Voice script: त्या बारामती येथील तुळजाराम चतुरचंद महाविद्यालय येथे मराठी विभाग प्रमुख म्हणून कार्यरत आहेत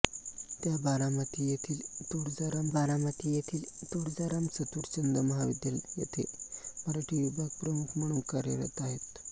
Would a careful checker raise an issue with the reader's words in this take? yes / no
yes